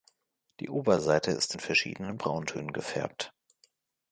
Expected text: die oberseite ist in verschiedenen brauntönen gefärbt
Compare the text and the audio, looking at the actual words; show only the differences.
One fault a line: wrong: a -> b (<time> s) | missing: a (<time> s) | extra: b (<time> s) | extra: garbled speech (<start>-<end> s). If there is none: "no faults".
no faults